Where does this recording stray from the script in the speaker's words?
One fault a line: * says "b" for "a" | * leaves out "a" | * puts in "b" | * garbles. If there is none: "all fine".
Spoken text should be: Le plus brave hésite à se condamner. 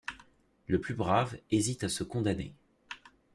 all fine